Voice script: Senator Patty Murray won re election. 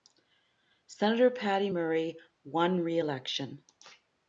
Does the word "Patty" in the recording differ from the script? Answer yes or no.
no